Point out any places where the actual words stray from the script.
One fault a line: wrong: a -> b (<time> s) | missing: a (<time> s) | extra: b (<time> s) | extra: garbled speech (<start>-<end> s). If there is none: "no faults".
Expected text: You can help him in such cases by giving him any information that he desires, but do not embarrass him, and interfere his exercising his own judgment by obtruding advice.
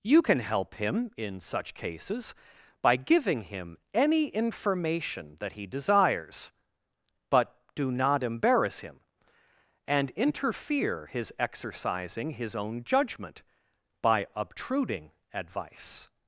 no faults